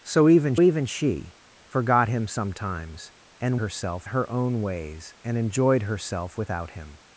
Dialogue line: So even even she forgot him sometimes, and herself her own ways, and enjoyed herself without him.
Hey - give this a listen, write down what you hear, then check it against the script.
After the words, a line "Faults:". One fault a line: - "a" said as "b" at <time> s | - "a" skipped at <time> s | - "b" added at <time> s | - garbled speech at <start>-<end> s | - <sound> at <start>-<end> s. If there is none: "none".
So even even she forgot him sometimes, and herself her own ways, and enjoyed herself without him.
Faults:
none